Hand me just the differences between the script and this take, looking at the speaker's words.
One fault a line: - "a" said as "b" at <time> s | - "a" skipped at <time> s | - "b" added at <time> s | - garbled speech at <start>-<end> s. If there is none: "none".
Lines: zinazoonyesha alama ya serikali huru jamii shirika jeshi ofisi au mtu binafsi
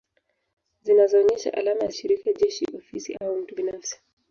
- "serikali huru jamii" skipped at 1.9 s